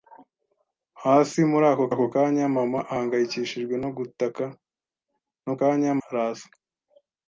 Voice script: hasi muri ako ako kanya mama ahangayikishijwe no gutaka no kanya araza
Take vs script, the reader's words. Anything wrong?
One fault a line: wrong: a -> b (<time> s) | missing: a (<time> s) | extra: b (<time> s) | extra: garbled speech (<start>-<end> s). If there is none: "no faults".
no faults